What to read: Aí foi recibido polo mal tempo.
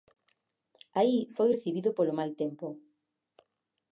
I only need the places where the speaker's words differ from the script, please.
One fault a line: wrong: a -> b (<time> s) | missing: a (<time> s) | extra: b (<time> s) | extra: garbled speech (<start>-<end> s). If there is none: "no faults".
no faults